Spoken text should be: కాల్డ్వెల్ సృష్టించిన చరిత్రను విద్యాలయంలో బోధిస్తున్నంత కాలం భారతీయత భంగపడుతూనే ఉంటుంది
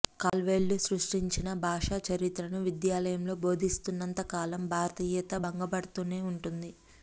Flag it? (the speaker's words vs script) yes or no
yes